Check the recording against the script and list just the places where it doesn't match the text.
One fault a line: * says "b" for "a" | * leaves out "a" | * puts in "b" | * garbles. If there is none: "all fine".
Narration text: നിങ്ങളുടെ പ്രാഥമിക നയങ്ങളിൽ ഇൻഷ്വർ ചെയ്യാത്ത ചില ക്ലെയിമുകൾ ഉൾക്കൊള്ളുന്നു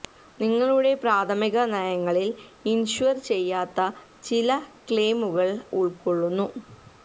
all fine